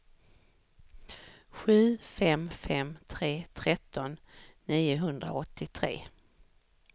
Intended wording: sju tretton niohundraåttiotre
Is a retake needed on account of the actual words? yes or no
yes